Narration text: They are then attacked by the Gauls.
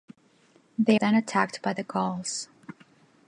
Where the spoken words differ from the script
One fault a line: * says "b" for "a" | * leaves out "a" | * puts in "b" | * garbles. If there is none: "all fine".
* leaves out "are"